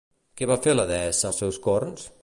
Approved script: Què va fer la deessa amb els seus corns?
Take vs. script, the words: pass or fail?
fail